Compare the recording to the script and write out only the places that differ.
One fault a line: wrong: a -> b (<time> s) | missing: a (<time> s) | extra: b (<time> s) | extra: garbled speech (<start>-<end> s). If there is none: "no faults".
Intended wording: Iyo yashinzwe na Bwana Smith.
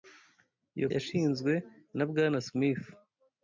no faults